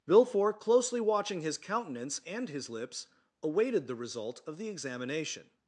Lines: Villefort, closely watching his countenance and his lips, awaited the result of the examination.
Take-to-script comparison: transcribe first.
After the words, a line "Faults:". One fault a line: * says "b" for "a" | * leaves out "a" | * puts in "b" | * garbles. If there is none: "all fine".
Villefort, closely watching his countenance and his lips, awaited the result of the examination.
Faults:
all fine